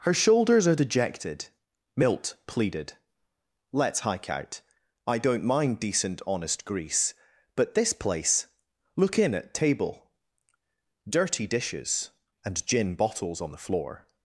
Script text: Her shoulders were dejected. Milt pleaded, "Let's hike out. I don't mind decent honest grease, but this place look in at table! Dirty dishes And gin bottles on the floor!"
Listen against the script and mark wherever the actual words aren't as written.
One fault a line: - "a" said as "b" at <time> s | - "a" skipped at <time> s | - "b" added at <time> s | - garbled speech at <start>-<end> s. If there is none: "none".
- "were" said as "are" at 0.7 s